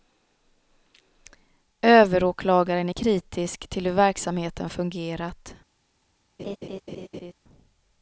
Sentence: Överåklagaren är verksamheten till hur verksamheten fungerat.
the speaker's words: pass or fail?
fail